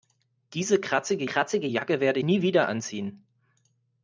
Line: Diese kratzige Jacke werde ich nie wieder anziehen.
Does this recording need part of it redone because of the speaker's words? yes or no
yes